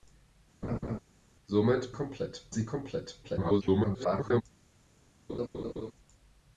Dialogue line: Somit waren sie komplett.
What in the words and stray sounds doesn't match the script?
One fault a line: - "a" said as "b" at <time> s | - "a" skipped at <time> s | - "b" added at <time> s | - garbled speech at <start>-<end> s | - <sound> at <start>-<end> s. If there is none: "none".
- laugh at 0.6-1.0 s
- "waren" said as "komplett" at 1.9 s
- garbled speech at 3.2-4.4 s
- laugh at 5.3-5.9 s